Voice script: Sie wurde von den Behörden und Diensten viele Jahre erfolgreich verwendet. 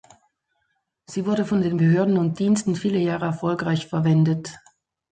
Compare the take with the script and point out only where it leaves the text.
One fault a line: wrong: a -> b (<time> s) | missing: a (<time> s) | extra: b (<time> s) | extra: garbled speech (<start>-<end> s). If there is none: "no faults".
no faults